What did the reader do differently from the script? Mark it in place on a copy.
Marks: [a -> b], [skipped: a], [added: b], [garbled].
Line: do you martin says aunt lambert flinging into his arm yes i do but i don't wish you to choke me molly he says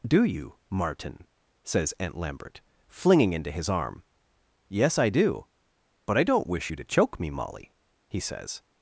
do you martin says aunt lambert flinging into his arm yes i do but i don't wish you to choke me molly he says